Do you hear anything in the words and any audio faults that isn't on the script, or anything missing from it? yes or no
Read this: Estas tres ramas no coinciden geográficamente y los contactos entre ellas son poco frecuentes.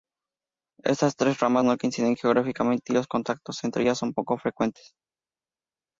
no